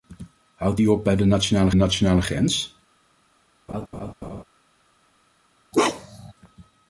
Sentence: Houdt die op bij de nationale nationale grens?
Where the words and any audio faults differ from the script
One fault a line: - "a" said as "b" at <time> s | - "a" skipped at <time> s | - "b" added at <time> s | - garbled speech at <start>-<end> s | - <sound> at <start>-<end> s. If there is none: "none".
- laugh at 3.7-4.4 s
- bark at 5.7-6.3 s